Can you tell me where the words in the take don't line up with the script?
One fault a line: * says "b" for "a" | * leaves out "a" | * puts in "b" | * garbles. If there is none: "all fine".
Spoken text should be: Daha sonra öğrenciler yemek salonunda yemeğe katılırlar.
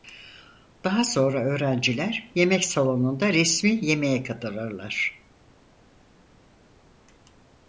* puts in "resmi"